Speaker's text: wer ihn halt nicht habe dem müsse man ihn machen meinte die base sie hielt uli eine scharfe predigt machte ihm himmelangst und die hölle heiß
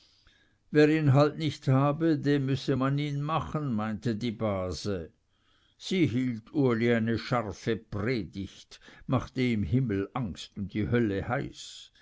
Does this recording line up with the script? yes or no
yes